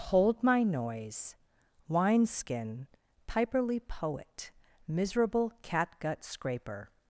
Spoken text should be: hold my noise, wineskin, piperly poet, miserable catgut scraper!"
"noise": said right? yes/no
yes